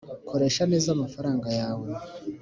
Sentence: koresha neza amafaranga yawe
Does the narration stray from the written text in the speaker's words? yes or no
no